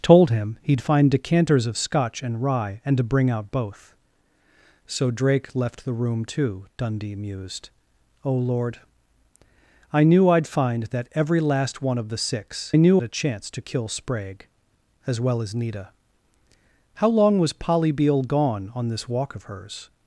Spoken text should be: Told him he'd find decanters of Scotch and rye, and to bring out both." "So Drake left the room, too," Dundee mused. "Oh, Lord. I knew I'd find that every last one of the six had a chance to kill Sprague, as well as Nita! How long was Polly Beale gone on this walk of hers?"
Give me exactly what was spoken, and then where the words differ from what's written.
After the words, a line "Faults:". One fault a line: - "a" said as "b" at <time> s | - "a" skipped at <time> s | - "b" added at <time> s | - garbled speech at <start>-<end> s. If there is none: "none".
Told him he'd find decanters of Scotch and rye, and to bring out both." "So Drake left the room, too," Dundee mused. "Oh, Lord. I knew I'd find that every last one of the six knew a chance to kill Sprague, as well as Nita! How long was Polly Beale gone on this walk of hers?"
Faults:
- "had" said as "knew" at 12.8 s